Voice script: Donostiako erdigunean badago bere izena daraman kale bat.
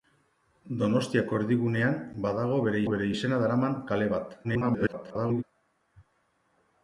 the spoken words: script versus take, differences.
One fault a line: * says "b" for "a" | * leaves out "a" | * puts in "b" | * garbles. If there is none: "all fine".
* puts in "bere"
* garbles